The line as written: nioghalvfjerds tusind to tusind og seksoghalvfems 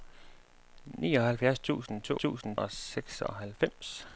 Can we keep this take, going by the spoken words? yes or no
yes